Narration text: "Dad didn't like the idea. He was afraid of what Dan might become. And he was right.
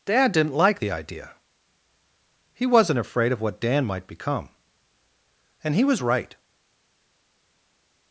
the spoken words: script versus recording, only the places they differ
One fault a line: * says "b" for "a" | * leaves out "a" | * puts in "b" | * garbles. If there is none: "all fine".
* says "wasn't" for "was"